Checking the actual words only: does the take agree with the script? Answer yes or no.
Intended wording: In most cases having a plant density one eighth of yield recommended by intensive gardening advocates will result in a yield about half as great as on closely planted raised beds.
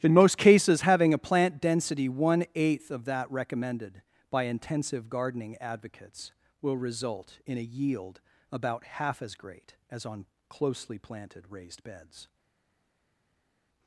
no